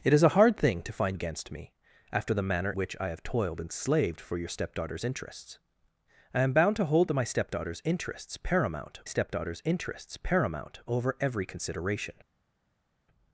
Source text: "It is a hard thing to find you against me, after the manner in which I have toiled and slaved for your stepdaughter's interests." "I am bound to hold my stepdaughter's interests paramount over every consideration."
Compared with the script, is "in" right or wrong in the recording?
wrong